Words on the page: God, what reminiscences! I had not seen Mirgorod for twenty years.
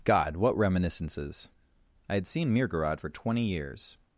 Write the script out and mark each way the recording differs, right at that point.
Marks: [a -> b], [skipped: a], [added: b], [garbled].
God, what reminiscences! I had [skipped: not] seen Mirgorod for twenty years.